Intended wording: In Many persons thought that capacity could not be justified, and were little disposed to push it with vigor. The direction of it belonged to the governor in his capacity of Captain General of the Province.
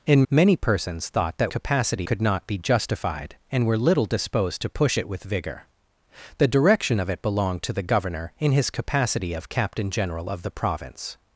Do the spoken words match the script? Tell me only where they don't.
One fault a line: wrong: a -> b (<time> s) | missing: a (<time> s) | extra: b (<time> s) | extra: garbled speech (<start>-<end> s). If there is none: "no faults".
no faults